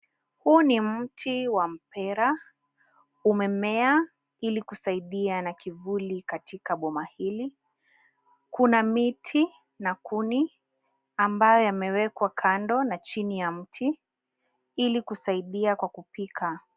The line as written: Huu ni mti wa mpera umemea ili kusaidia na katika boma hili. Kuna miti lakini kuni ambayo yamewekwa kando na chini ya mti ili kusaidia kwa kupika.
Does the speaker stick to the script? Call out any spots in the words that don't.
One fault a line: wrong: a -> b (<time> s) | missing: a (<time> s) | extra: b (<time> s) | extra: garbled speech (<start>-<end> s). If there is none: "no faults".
extra: kivuli (5.5 s)
wrong: lakini -> na (9.8 s)